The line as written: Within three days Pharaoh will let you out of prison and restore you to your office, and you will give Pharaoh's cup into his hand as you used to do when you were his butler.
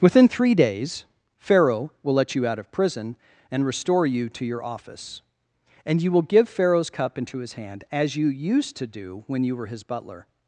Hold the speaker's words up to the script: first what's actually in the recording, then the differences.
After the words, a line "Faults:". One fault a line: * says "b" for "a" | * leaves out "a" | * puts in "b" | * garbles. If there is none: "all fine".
Within three days Pharaoh will let you out of prison and restore you to your office, and you will give Pharaoh's cup into his hand as you used to do when you were his butler.
Faults:
all fine